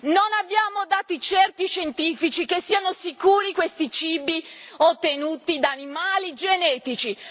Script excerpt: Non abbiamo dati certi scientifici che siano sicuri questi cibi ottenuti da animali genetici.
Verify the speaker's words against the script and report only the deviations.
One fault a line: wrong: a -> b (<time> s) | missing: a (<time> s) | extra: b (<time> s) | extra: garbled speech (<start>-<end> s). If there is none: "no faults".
no faults